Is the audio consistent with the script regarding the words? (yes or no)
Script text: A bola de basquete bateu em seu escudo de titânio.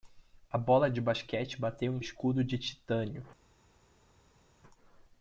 no